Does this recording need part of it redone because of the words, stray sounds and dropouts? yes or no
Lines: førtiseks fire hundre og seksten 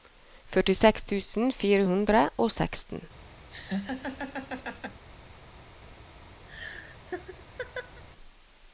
yes